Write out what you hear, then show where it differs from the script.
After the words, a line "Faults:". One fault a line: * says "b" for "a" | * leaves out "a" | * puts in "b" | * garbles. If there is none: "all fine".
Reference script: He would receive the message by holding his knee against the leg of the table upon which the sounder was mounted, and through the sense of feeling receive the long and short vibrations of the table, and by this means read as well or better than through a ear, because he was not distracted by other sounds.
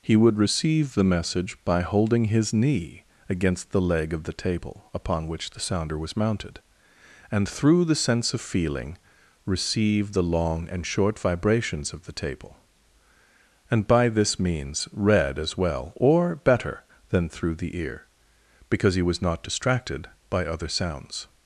He would receive the message by holding his knee against the leg of the table upon which the sounder was mounted, and through the sense of feeling receive the long and short vibrations of the table, and by this means read as well or better than through the ear, because he was not distracted by other sounds.
Faults:
* says "the" for "a"